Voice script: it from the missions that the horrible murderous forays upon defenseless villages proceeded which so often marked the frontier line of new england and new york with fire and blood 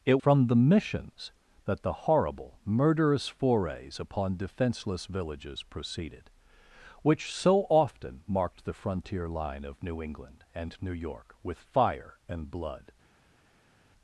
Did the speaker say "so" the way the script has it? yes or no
yes